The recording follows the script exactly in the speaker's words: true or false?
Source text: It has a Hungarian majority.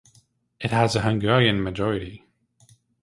true